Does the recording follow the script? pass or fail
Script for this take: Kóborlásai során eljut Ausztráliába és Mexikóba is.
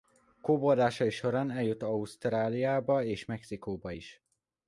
pass